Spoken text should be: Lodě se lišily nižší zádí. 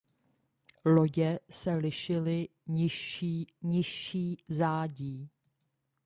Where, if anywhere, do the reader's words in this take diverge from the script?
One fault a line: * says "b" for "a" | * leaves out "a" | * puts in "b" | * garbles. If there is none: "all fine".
* puts in "nižší"